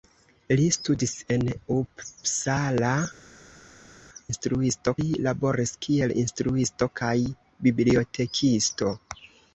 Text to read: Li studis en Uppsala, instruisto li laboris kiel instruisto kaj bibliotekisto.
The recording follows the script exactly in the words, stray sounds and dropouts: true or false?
true